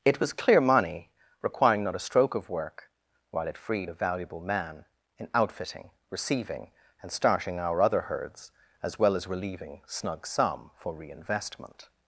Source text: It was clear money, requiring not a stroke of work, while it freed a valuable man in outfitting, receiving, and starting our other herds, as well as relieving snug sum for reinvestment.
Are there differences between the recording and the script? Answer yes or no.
no